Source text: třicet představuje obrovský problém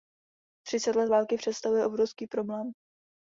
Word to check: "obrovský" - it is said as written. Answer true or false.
true